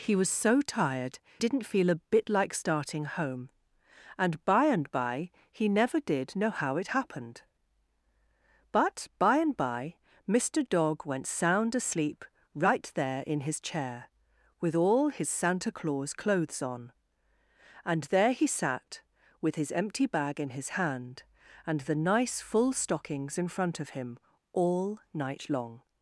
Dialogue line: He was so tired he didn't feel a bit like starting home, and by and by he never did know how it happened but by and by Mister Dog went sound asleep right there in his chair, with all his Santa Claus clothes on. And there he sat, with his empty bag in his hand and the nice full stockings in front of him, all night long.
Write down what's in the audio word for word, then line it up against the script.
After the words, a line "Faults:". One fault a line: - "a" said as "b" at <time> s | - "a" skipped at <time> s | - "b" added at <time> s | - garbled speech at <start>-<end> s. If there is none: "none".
He was so tired didn't feel a bit like starting home, and by and by he never did know how it happened but by and by Mister Dog went sound asleep right there in his chair, with all his Santa Claus clothes on. And there he sat, with his empty bag in his hand and the nice full stockings in front of him, all night long.
Faults:
- "he" skipped at 1.2 s